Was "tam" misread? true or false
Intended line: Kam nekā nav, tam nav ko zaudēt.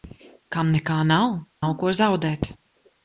true